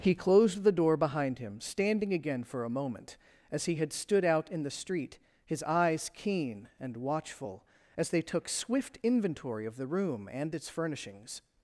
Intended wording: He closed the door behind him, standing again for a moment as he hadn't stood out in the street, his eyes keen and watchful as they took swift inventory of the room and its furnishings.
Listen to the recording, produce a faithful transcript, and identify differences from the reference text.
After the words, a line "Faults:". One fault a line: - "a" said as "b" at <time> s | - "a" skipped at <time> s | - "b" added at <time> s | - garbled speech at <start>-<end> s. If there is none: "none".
He closed the door behind him, standing again for a moment as he had stood out in the street, his eyes keen and watchful as they took swift inventory of the room and its furnishings.
Faults:
- "hadn't" said as "had" at 3.8 s